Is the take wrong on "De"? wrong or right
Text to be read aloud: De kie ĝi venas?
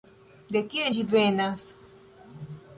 right